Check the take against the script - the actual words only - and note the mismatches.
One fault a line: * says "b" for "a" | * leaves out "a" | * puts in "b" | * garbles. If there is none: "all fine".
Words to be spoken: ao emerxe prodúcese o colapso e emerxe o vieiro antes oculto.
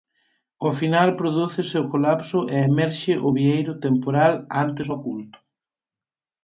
* says "final" for "emerxe"
* puts in "temporal"